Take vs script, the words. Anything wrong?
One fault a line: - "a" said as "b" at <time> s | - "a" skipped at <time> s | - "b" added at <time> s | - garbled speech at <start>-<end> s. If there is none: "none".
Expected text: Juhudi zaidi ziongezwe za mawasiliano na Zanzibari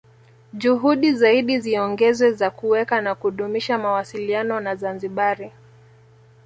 - "kuweka na kudumisha" added at 2.5 s